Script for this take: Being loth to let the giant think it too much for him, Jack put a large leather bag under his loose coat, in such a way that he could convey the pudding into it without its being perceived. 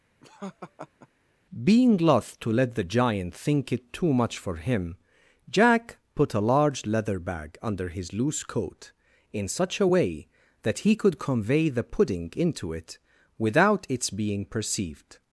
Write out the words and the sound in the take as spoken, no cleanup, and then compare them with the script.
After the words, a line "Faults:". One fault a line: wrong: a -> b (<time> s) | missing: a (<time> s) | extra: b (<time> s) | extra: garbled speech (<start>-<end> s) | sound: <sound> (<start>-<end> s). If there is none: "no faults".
Being loth to let the giant think it too much for him, Jack put a large leather bag under his loose coat, in such a way that he could convey the pudding into it without its being perceived.
Faults:
sound: laugh (0.2-1.1 s)